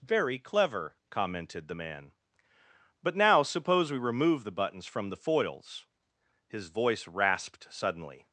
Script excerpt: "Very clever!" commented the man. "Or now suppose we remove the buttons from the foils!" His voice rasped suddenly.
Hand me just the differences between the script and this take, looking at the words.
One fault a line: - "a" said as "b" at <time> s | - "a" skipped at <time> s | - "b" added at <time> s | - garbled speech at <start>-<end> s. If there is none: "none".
- "Or" said as "But" at 3.0 s